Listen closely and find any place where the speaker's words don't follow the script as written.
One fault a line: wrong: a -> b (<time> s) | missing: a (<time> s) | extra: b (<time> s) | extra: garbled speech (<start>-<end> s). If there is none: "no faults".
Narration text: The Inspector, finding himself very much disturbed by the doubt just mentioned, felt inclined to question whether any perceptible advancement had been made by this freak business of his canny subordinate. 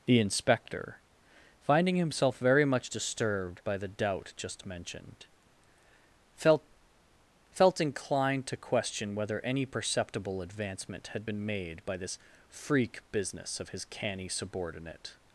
extra: felt (7.5 s)